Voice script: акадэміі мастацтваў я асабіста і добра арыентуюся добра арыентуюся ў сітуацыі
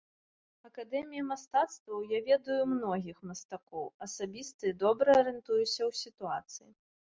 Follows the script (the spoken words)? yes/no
no